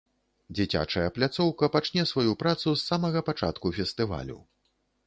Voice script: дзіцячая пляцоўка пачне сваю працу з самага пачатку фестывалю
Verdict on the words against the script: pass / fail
pass